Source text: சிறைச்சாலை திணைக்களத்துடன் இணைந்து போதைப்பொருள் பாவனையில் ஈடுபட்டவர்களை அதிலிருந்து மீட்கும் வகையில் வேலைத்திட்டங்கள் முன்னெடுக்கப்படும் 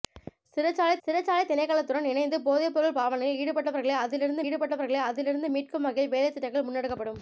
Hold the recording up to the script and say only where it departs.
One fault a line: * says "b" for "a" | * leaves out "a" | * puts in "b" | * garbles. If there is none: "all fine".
* puts in "சிறைச்சாலை"
* puts in "ஈடுபட்டவர்களை அதிலிருந்து"